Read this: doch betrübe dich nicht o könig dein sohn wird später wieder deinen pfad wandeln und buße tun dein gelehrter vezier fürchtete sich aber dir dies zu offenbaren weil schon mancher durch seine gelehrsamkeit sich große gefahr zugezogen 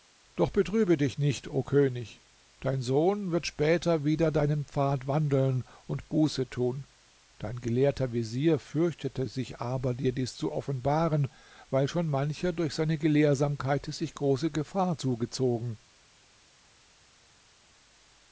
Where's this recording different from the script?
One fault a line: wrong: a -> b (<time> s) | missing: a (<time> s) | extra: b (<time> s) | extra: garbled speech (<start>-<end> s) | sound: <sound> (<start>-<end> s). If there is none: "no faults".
no faults